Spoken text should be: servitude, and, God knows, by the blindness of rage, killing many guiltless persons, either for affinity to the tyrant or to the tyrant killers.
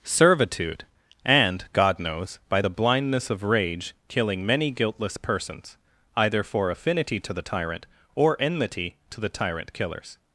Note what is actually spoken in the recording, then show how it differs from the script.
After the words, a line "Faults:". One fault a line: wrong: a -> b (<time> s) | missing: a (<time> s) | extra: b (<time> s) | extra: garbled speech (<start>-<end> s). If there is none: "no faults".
servitude, and, God knows, by the blindness of rage, killing many guiltless persons, either for affinity to the tyrant or enmity to the tyrant killers.
Faults:
extra: enmity (8.4 s)